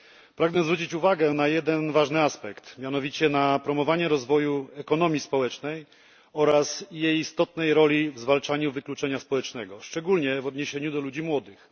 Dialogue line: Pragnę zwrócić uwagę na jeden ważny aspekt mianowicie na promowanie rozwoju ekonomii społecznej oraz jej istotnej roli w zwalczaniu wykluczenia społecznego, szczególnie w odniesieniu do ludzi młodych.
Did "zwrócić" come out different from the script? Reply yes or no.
no